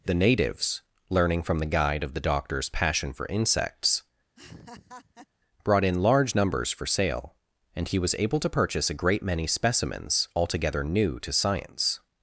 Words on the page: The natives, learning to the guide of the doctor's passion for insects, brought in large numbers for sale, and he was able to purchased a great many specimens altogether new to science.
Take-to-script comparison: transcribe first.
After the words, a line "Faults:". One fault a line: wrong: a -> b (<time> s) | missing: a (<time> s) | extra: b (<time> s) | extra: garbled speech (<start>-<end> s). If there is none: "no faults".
The natives, learning from the guide of the doctor's passion for insects, brought in large numbers for sale, and he was able to purchase a great many specimens altogether new to science.
Faults:
wrong: to -> from (1.4 s)
wrong: purchased -> purchase (8.5 s)